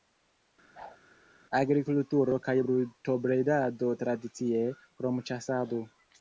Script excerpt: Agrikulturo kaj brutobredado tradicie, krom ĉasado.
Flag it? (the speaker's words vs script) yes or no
no